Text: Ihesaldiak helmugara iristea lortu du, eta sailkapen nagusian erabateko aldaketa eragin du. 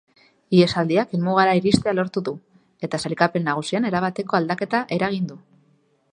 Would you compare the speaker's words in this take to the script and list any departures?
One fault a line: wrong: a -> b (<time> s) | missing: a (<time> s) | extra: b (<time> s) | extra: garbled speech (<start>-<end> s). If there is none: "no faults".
no faults